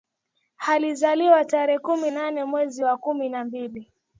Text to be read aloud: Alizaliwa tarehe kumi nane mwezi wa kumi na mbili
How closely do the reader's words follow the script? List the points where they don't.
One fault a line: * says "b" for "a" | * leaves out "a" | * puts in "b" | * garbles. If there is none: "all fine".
all fine